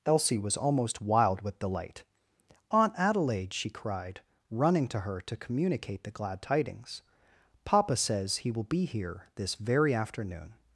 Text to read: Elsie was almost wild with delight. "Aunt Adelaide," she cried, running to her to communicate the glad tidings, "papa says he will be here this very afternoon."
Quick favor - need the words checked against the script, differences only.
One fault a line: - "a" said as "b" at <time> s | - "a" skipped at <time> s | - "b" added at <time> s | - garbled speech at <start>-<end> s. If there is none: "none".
none